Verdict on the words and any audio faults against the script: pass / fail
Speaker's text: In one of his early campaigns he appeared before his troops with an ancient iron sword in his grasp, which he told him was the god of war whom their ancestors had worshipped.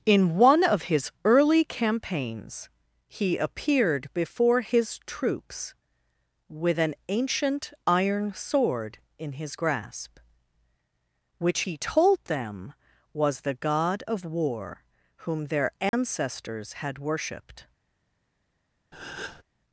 fail